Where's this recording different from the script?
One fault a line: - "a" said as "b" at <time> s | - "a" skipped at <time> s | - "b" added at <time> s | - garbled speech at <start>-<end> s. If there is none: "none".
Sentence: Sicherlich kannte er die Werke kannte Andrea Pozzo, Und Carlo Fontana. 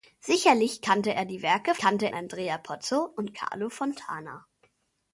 none